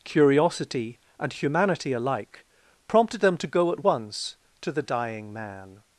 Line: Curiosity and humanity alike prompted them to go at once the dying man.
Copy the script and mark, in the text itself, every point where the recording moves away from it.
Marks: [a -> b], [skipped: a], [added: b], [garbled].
Curiosity and humanity alike prompted them to go at once [added: to] the dying man.